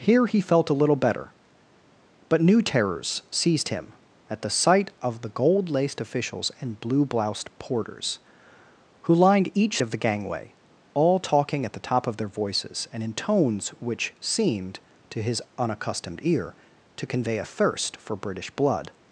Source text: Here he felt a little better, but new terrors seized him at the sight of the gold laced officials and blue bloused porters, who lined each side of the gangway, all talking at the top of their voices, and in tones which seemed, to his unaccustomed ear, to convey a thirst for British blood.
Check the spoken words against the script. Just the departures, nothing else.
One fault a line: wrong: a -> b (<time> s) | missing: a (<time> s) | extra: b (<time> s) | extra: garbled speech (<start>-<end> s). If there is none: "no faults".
missing: side (9.8 s)